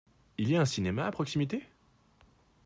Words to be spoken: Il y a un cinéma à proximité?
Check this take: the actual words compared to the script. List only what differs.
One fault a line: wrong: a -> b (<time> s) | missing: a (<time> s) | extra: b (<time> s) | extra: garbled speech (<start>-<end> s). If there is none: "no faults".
no faults